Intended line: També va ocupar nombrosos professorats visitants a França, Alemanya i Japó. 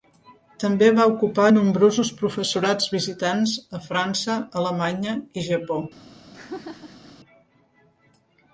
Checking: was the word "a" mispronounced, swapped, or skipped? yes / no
no